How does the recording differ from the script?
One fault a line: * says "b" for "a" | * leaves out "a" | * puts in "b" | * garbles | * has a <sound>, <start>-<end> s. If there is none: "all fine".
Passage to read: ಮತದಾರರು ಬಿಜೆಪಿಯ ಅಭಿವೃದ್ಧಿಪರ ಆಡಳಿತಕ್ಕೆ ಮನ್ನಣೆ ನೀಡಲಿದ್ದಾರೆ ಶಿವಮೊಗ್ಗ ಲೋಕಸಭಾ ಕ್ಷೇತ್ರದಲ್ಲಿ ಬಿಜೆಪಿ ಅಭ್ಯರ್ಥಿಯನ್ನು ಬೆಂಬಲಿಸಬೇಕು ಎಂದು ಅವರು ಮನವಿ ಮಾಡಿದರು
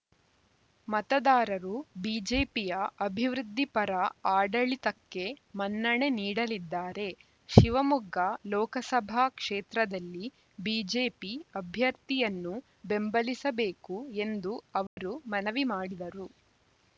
* has a dropout, 14.9-15.0 s